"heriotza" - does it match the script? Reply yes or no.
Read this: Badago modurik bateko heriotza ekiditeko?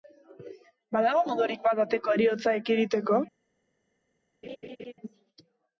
yes